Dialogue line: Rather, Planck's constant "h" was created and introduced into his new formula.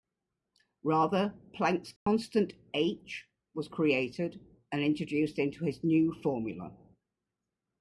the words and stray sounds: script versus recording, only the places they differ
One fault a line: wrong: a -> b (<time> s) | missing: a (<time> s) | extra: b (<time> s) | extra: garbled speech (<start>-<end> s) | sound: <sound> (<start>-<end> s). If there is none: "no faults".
sound: dropout (2.0-2.1 s)